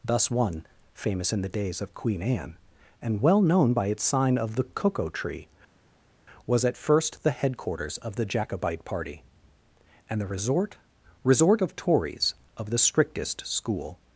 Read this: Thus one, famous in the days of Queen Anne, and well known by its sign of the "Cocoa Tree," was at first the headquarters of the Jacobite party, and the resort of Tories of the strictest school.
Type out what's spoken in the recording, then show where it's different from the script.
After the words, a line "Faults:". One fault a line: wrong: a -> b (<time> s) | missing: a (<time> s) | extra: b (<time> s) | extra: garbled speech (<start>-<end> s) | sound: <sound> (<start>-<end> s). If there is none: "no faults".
Thus one, famous in the days of Queen Anne, and well known by its sign of the "Cocoa Tree," was at first the headquarters of the Jacobite party, and the resort resort of Tories of the strictest school.
Faults:
extra: resort (11.2 s)